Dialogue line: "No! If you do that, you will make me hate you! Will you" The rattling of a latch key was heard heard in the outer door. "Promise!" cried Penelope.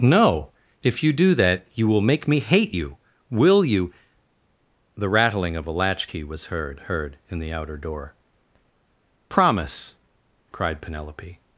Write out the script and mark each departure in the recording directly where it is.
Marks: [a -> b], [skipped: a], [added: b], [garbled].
"No! If you do that, you will make me hate you! Will you" The rattling of a latch key was heard heard in the outer door. "Promise!" cried Penelope.